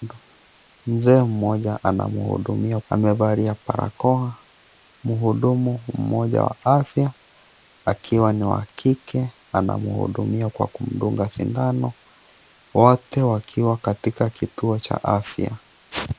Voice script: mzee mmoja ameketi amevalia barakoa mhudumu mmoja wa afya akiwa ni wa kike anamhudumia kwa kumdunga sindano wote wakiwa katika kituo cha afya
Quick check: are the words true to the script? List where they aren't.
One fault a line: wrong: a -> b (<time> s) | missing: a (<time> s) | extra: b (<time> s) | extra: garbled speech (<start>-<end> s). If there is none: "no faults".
wrong: ameketi -> anamhudumia (1.8 s)